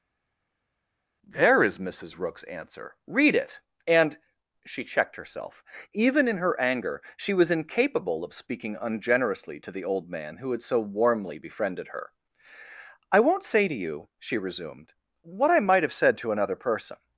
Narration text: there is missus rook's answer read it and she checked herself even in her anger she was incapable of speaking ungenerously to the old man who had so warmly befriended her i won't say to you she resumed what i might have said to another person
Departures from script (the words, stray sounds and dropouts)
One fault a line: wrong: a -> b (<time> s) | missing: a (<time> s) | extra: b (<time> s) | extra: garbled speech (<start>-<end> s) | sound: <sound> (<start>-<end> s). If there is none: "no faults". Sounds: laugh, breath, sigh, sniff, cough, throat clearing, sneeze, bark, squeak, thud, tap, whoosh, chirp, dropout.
no faults